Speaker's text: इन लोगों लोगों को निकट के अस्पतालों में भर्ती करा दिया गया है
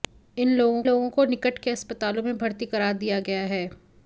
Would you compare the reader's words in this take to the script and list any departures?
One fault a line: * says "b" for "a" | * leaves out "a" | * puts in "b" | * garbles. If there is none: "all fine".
all fine